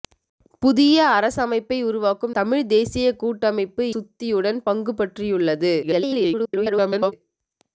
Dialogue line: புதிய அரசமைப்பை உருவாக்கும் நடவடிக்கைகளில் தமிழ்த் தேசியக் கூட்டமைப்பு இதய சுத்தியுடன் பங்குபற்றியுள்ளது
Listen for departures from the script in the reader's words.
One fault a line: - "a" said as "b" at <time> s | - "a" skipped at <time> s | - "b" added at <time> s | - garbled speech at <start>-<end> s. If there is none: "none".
- "நடவடிக்கைகளில்" skipped at 2.3 s
- "இதய" skipped at 3.9 s
- garbled speech at 5.8-7.1 s